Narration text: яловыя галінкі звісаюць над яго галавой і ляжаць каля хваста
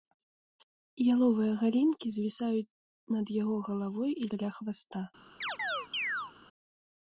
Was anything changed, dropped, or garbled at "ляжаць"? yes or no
yes